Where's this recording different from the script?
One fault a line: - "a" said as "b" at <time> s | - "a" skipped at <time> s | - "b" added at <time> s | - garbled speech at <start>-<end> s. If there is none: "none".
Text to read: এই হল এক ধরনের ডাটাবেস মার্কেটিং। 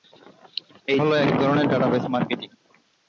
none